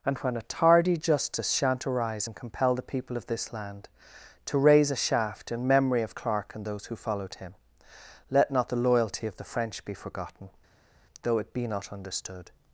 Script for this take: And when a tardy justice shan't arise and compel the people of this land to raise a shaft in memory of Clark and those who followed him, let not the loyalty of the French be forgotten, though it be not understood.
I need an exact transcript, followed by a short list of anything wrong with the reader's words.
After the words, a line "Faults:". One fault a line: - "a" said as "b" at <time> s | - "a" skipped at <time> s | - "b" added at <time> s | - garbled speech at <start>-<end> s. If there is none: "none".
And when a tardy justice shan't arise and compel the people of this land to raise a shaft in memory of Clark and those who followed him, let not the loyalty of the French be forgotten, though it be not understood.
Faults:
none